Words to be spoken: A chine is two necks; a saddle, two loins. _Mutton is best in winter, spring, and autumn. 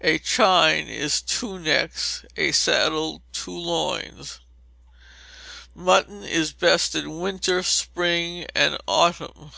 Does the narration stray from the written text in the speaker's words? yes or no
no